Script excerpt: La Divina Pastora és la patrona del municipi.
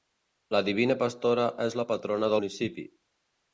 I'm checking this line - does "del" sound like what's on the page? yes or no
no